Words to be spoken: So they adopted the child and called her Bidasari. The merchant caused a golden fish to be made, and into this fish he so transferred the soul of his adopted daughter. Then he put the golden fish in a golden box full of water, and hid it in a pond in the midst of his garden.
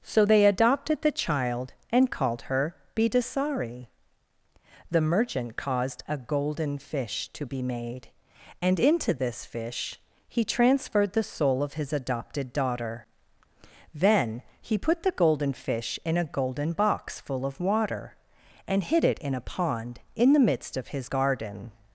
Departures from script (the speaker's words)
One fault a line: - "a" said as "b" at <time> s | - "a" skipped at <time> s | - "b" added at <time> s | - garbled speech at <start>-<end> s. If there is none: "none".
- "so" skipped at 10.4 s